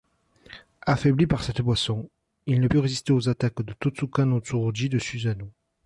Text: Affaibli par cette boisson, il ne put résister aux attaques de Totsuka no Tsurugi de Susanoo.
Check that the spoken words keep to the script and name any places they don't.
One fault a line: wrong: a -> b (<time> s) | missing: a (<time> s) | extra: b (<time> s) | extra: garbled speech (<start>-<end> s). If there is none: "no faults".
no faults